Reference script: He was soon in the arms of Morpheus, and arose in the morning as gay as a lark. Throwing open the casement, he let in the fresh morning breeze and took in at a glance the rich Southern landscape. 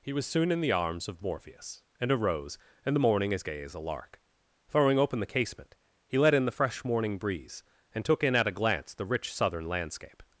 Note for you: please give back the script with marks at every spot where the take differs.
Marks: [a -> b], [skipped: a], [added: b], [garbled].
He was soon in the arms of Morpheus, and arose [in -> and] the morning as gay as a lark. Throwing open the casement, he let in the fresh morning breeze and took in at a glance the rich Southern landscape.